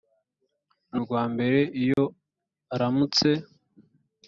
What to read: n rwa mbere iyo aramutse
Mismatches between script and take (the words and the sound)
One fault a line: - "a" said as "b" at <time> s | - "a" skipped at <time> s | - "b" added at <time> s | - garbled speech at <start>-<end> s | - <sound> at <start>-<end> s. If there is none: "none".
- dropout at 1.9-2.0 s